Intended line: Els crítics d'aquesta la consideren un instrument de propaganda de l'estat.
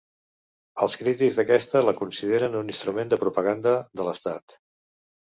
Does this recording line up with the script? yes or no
yes